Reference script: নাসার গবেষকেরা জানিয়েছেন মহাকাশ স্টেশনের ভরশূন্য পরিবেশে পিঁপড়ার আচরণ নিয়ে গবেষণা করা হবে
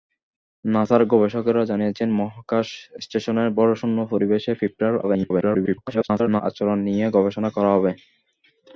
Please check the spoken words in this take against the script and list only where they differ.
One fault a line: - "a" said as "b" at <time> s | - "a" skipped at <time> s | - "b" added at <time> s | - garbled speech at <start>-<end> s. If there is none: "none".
- garbled speech at 5.0-6.4 s